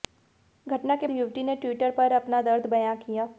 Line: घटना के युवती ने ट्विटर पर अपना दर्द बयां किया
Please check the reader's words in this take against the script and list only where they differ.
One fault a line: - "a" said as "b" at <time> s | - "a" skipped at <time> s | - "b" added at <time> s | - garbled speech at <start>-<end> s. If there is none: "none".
none